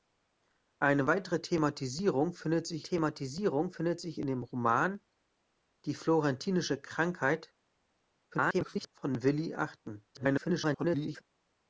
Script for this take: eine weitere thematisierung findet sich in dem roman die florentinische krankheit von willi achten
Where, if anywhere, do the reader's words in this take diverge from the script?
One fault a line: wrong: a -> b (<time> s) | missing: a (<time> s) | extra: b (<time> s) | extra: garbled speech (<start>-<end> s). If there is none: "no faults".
extra: thematisierung findet sich (2.8 s)
extra: garbled speech (8.3-8.9 s)
extra: garbled speech (10.1-11.2 s)